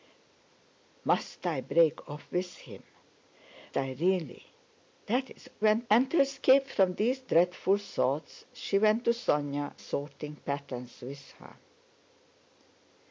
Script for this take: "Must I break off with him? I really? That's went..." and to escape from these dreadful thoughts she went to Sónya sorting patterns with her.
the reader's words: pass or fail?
pass